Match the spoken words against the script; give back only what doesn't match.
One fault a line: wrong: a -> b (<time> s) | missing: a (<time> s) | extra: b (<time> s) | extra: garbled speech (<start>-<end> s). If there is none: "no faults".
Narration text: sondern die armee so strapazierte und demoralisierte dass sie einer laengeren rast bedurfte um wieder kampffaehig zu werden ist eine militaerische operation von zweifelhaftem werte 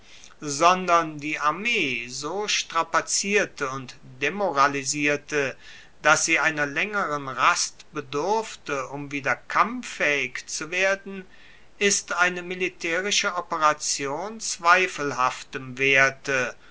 missing: von (14.4 s)